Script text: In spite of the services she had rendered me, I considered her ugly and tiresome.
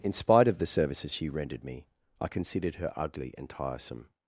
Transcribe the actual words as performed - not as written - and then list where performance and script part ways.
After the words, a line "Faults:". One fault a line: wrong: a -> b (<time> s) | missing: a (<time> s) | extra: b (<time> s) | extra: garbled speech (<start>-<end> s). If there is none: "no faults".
In spite of the services she rendered me, I considered her ugly and tiresome.
Faults:
missing: had (1.3 s)